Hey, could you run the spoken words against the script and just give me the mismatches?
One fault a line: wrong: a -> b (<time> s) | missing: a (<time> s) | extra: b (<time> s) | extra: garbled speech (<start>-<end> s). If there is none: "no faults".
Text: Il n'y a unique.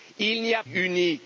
no faults